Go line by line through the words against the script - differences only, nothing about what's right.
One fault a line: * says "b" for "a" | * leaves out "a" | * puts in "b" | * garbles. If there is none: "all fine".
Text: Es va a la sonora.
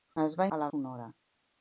all fine